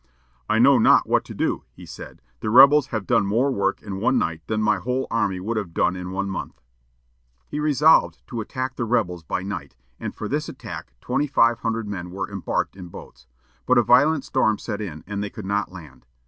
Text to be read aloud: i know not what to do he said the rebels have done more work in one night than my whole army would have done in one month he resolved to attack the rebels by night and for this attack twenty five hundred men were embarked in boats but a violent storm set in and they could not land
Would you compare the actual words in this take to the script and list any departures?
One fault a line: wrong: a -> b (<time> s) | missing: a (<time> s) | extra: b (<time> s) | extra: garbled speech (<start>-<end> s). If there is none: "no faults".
no faults